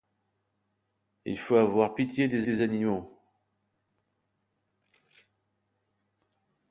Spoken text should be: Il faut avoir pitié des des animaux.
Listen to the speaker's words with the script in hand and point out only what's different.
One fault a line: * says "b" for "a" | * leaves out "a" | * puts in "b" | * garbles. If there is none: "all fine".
all fine